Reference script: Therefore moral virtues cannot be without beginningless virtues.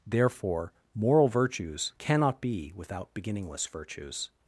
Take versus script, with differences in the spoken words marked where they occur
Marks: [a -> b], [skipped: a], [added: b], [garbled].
Therefore moral virtues cannot be without beginningless virtues.